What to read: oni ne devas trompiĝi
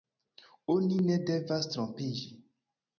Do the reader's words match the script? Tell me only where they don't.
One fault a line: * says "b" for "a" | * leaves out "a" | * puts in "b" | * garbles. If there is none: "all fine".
all fine